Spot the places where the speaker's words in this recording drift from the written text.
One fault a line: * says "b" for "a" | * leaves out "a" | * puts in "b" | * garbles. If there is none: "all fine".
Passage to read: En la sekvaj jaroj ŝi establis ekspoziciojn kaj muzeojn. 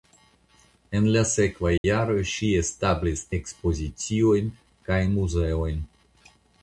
all fine